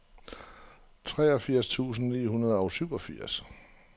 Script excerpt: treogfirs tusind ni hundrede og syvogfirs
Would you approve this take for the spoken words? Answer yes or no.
yes